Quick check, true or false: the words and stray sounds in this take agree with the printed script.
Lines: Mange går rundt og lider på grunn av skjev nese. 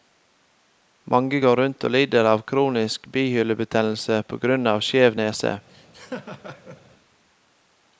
false